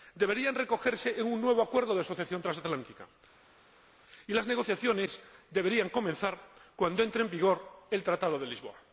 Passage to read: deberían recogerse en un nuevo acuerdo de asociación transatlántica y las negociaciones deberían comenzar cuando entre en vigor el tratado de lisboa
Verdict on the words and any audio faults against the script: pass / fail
pass